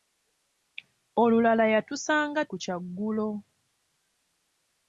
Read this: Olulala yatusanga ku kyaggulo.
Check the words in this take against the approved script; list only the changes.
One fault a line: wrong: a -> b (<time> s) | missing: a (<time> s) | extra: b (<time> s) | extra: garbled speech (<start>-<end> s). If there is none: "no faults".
no faults